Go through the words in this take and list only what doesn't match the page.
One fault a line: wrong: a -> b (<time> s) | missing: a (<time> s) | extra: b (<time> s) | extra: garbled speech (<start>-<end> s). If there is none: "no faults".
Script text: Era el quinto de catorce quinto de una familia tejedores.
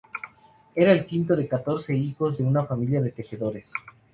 wrong: quinto -> hijos (1.9 s)
extra: de (3.0 s)